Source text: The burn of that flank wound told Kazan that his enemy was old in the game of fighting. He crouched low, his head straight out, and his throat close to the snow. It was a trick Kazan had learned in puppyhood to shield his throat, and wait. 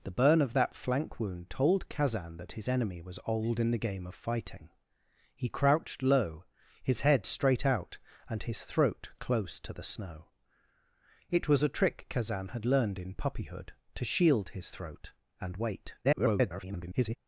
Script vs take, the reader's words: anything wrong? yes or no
yes